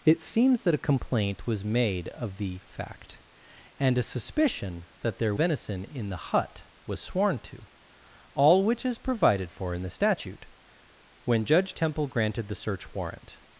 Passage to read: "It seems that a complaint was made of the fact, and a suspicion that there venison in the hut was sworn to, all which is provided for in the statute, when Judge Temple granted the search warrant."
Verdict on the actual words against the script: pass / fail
pass